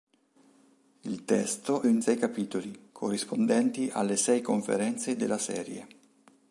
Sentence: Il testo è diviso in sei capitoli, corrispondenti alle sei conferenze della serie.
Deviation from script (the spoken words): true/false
true